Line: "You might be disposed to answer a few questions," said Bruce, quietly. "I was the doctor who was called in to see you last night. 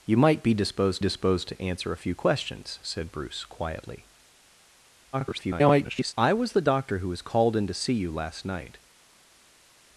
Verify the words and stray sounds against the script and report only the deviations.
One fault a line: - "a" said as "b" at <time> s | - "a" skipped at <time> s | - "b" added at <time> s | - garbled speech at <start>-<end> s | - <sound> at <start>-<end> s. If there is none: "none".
- "disposed" added at 1.0 s
- garbled speech at 5.1-6.1 s